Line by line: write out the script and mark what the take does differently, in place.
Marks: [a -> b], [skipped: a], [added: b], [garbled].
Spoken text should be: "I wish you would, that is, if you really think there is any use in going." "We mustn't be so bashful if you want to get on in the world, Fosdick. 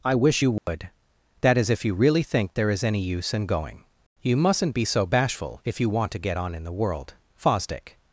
"I wish you would, that is, if you really think there is any use in going." ["We -> You] mustn't be so bashful if you want to get on in the world, Fosdick.